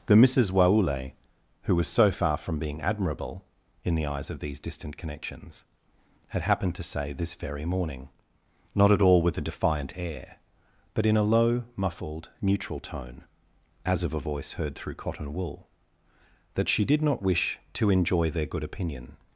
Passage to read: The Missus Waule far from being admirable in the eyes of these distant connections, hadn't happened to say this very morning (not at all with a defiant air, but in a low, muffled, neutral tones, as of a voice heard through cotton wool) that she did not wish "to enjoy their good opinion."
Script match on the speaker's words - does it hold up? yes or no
no